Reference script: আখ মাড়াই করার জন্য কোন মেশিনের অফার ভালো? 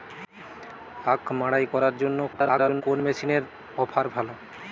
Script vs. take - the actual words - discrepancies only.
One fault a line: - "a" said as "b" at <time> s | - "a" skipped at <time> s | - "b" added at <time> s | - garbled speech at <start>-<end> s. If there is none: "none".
- garbled speech at 2.3-2.8 s